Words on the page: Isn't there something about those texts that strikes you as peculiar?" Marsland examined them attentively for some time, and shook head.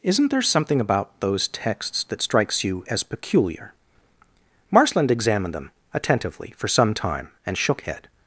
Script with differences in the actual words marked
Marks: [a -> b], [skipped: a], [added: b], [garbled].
Isn't there something about those texts that strikes you as peculiar?" Marsland examined them attentively for some time, and shook head.